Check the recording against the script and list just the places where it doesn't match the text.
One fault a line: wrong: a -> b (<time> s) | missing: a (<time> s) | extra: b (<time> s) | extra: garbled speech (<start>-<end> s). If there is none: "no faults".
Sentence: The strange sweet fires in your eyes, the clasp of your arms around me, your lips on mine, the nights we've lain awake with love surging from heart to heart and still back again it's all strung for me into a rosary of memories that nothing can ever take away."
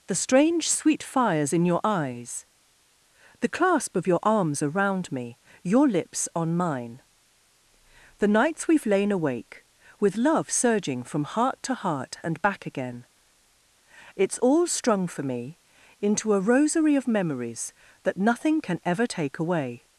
missing: still (12.4 s)